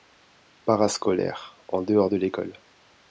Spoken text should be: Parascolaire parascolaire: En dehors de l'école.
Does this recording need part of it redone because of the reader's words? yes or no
yes